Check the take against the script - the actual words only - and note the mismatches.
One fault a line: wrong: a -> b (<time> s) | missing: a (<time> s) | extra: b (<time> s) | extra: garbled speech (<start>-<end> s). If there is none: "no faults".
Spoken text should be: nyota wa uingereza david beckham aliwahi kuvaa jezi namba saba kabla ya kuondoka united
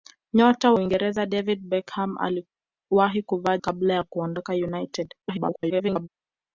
missing: wa (0.7 s)
missing: jezi namba saba (3.6 s)
extra: garbled speech (5.2-6.1 s)